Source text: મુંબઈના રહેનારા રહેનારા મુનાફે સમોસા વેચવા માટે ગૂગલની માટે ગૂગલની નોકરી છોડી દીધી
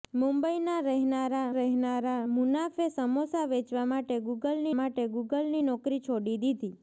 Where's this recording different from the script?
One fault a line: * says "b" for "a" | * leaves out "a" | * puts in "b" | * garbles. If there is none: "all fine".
all fine